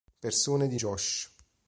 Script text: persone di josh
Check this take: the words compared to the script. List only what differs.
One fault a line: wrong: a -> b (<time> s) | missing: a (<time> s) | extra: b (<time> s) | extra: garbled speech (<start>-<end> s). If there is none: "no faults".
no faults